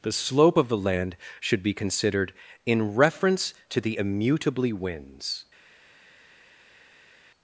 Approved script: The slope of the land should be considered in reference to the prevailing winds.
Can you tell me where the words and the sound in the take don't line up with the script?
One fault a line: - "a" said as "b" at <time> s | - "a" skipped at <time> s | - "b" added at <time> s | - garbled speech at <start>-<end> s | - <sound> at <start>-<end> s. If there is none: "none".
- "prevailing" said as "immutably" at 4.0 s